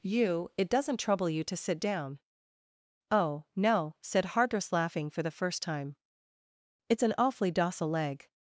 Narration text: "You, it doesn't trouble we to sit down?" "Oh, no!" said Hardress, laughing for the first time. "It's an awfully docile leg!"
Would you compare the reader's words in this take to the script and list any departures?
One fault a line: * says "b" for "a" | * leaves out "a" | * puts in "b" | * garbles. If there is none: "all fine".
* says "you" for "we"